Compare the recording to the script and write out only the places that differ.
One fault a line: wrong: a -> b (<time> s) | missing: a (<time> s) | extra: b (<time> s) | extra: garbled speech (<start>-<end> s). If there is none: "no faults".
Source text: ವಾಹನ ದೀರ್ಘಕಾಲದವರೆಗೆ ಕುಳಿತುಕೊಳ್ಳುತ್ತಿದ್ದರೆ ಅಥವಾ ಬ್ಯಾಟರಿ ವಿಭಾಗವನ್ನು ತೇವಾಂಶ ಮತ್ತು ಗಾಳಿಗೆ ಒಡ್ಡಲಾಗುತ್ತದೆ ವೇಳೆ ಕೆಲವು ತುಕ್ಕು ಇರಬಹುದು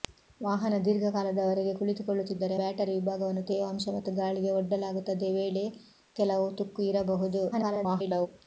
missing: ಅಥವಾ (2.6 s)
extra: garbled speech (7.5-8.3 s)